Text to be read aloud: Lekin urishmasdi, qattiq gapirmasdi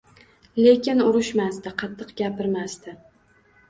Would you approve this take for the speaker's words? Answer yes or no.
yes